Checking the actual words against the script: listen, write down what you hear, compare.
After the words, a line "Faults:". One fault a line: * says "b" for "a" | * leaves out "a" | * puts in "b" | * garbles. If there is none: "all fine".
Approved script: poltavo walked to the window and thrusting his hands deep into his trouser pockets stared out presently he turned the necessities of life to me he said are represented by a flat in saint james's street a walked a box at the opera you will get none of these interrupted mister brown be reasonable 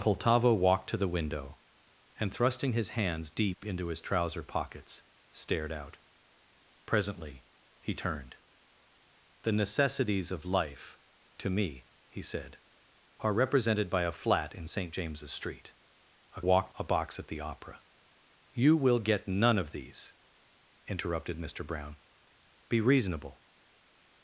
poltavo walked to the window and thrusting his hands deep into his trouser pockets stared out presently he turned the necessities of life to me he said are represented by a flat in saint james's street a walked a box at the opera you will get none of these interrupted mister brown be reasonable
Faults:
all fine